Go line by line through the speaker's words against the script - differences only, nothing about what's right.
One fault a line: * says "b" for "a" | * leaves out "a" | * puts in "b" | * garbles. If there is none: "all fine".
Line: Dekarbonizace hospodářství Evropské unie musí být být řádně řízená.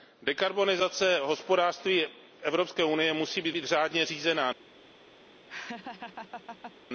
all fine